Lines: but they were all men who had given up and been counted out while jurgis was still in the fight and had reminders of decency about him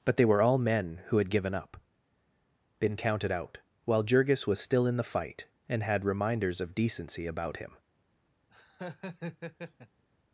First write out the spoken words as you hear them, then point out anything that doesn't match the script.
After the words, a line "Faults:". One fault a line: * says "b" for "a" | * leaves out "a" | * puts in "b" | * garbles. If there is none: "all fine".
but they were all men who had given up been counted out while jurgis was still in the fight and had reminders of decency about him
Faults:
* leaves out "and"